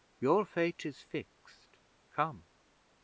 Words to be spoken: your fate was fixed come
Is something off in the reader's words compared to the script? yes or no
yes